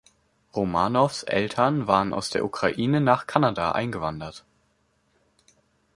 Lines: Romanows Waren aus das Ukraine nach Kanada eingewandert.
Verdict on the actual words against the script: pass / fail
fail